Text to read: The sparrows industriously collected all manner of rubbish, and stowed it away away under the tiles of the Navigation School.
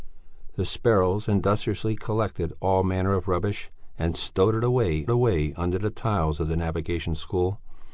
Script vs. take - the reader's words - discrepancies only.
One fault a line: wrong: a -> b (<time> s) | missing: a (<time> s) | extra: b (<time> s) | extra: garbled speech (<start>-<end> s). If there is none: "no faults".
no faults